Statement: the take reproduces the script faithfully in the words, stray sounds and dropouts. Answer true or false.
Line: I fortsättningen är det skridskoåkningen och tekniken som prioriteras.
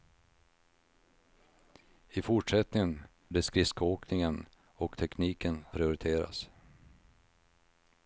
false